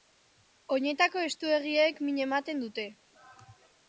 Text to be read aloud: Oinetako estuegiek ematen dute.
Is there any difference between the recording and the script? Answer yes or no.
yes